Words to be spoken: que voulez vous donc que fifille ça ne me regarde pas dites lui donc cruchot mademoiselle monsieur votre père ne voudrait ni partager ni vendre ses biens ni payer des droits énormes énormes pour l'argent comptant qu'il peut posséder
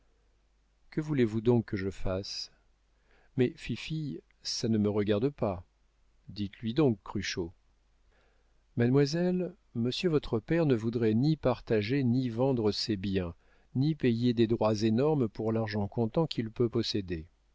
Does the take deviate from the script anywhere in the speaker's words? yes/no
yes